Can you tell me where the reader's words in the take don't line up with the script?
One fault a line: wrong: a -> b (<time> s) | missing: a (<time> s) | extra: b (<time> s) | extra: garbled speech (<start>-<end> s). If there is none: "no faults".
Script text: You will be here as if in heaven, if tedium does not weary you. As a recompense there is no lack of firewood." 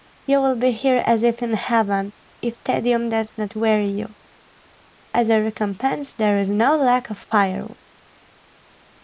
no faults